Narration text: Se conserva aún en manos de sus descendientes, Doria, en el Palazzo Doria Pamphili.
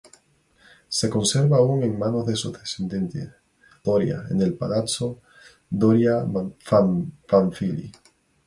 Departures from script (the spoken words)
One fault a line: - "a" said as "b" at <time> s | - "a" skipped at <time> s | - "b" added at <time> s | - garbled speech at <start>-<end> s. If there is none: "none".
none